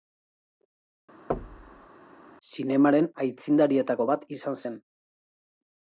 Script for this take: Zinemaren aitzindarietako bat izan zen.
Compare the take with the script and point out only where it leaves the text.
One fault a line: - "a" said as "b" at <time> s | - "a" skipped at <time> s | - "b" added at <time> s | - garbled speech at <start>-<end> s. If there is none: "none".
none